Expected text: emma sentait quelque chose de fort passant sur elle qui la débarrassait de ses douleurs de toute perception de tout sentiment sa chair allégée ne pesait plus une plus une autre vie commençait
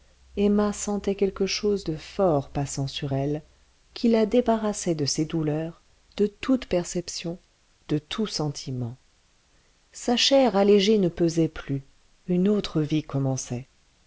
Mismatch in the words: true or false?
true